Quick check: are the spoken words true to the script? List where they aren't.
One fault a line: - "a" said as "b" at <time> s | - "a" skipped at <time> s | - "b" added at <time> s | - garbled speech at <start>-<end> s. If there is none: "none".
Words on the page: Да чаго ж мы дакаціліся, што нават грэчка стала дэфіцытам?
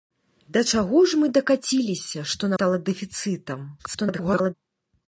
- "нават грэчка" skipped at 2.5 s
- garbled speech at 3.8-4.5 s